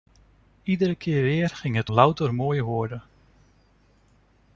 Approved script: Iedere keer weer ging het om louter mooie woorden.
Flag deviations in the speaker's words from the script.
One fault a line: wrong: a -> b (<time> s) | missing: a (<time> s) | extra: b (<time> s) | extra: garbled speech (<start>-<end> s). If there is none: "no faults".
missing: om (1.9 s)